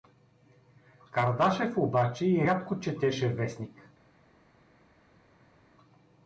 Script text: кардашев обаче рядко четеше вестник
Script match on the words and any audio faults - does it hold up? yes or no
no